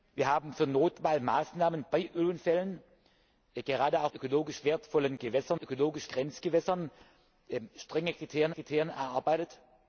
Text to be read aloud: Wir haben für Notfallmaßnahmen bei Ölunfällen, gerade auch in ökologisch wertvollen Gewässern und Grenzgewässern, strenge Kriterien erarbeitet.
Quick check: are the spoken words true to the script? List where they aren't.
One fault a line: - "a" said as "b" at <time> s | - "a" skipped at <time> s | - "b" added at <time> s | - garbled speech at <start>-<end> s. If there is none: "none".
- "in" skipped at 4.1 s
- "und" said as "ökologisch" at 5.6 s
- "Kriterien" added at 8.5 s